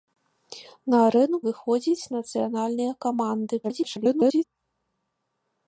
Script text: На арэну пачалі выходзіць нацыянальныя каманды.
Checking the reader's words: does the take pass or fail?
fail